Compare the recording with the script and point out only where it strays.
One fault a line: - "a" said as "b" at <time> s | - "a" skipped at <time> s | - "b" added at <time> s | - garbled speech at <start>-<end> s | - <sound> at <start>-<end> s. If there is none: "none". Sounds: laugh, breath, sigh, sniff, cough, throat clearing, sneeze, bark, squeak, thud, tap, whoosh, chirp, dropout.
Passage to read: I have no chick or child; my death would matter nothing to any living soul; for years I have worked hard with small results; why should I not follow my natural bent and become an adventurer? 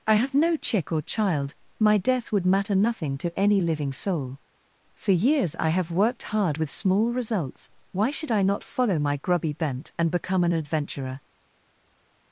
- "natural" said as "grubby" at 9.2 s